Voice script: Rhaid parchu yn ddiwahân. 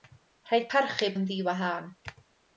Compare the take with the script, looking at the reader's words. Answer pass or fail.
pass